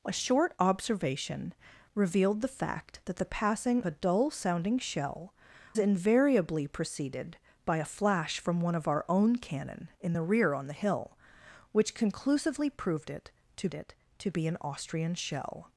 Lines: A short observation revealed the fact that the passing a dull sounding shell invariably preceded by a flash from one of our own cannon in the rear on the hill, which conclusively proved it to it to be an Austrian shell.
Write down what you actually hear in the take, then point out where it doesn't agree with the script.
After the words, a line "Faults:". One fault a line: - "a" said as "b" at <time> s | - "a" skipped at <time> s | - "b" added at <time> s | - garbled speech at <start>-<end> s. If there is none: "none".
A short observation revealed the fact that the passing a dull sounding shell invariably preceded by a flash from one of our own cannon in the rear on the hill, which conclusively proved it to it to be an Austrian shell.
Faults:
none